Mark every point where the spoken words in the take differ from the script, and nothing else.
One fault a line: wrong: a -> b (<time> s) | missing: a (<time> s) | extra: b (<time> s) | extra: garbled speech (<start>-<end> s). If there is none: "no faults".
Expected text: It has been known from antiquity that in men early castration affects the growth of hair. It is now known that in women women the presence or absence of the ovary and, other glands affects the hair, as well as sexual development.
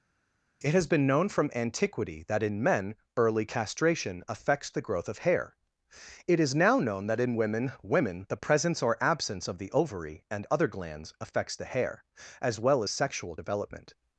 no faults